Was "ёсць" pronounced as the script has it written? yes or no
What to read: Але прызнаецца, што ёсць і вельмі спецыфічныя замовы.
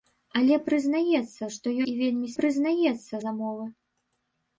no